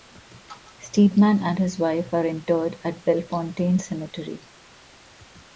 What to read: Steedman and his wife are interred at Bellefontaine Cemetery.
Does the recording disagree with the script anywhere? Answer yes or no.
no